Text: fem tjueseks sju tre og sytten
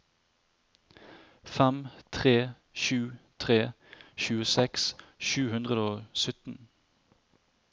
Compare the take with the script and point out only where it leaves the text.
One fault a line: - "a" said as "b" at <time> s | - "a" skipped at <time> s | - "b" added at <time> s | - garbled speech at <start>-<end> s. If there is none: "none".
- "tre sju tre" added at 2.1 s
- "tre" said as "hundre" at 5.5 s